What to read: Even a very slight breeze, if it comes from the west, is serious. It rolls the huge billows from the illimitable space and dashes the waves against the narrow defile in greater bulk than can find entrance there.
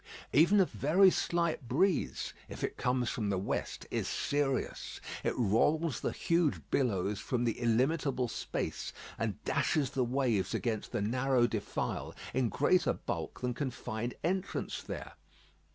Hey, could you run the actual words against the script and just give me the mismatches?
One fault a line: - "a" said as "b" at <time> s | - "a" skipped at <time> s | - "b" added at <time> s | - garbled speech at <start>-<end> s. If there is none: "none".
none